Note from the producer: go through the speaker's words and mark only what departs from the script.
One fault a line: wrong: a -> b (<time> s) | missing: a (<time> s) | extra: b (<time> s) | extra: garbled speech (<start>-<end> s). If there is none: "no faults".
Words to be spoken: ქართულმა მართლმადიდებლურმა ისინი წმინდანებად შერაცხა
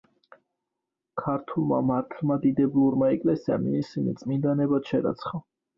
extra: ეკლესიამ (3.2 s)